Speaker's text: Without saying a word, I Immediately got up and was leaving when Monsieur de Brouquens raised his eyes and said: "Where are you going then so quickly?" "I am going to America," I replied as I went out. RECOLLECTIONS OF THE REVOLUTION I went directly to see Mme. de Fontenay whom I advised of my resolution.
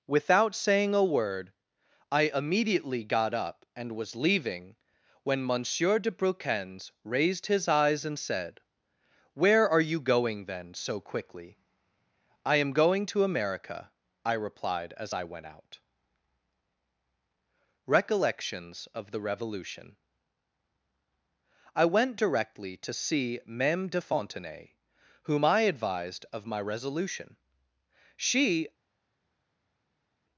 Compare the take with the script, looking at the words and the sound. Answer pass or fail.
fail